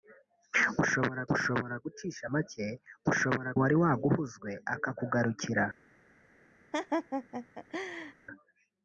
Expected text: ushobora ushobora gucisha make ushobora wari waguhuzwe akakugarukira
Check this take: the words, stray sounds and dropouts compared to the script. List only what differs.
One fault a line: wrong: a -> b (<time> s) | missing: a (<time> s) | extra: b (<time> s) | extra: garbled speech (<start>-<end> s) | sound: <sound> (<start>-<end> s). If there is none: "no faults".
sound: laugh (6.7-8.1 s)